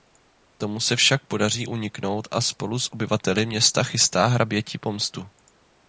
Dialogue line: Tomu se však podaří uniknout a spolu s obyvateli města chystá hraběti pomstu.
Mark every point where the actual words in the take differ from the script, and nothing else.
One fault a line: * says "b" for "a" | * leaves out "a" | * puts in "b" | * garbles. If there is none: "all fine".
all fine